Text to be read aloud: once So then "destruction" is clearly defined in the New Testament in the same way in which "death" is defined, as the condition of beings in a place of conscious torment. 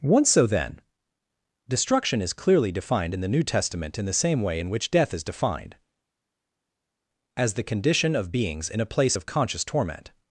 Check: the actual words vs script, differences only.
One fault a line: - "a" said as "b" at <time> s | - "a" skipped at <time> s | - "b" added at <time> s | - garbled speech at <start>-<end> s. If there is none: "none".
none